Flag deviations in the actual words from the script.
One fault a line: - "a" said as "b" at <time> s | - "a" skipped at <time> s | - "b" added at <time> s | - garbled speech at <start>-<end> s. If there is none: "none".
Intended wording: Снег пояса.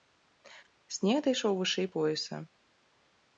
- "дайшоў вышэй" added at 1.3 s